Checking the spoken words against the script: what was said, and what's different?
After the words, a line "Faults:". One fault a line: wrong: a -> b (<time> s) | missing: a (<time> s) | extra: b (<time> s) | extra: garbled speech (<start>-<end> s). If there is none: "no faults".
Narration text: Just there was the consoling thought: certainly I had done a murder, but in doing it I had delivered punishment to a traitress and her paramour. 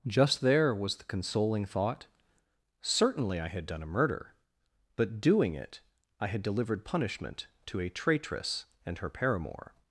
Just there was the consoling thought: certainly I had done a murder, but doing it I had delivered punishment to a traitress and her paramour.
Faults:
missing: in (5.2 s)